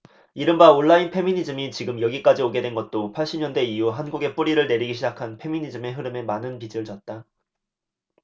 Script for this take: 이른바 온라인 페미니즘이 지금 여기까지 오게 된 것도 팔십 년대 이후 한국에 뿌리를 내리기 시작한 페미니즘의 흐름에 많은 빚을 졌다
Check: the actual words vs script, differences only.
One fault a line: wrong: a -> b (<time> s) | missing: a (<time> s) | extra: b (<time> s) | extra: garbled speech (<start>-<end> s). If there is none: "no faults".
no faults